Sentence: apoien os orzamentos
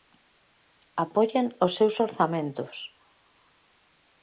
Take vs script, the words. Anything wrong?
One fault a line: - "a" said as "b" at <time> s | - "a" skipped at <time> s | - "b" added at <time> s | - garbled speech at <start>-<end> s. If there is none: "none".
- "seus" added at 1.8 s